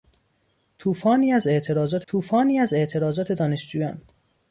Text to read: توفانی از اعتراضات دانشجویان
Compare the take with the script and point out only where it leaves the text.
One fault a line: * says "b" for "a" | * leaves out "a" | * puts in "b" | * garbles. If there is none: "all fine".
* puts in "توفانی از اعتراضات"